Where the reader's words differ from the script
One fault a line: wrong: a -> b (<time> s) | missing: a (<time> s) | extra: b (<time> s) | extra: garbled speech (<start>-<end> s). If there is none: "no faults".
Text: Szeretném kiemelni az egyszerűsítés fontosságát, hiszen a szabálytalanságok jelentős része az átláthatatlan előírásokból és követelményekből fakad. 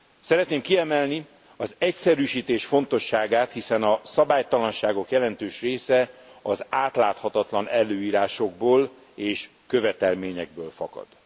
no faults